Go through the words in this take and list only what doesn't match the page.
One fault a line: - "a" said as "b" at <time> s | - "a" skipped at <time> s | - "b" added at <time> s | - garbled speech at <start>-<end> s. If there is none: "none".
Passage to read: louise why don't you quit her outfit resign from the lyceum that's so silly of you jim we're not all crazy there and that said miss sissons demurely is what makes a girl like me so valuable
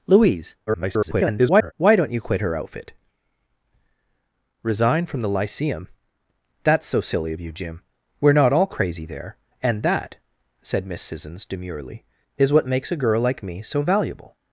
- garbled speech at 0.7-1.7 s